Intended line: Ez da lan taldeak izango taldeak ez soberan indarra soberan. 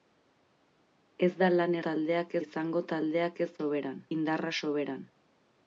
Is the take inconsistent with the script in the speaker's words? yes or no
no